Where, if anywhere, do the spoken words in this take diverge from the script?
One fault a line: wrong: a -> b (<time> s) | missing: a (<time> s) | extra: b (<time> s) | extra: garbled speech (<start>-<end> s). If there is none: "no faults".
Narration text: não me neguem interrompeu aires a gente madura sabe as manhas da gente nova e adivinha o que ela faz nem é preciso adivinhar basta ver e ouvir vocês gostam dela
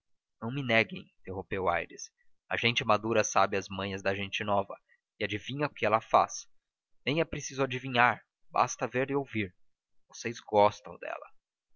no faults